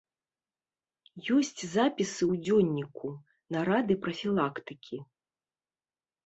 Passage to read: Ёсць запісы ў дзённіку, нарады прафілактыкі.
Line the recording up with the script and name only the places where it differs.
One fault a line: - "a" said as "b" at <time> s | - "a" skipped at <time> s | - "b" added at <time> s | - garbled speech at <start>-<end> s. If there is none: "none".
none